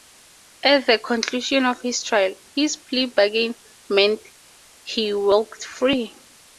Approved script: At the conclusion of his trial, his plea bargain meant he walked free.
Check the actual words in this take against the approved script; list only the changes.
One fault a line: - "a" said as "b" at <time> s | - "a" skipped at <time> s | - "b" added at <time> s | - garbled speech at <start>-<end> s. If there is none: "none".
none